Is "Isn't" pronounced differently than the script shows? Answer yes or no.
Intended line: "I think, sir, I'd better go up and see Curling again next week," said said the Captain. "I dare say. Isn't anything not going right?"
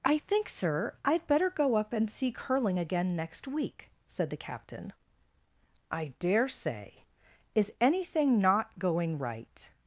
yes